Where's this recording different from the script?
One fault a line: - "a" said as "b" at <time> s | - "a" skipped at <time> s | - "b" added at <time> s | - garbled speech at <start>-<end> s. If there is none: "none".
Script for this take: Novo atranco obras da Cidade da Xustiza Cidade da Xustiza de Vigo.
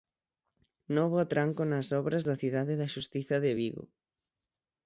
- "nas" added at 1.7 s
- "Cidade da Xustiza" skipped at 3.4 s